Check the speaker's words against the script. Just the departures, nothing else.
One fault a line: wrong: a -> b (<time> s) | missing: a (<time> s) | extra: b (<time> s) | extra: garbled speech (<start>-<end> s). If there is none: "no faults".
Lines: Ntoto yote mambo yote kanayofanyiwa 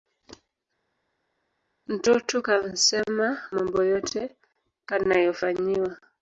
wrong: yote -> kansema (2.4 s)